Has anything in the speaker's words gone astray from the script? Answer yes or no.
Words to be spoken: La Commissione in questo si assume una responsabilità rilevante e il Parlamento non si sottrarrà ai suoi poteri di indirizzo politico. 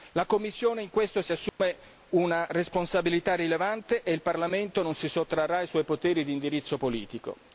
no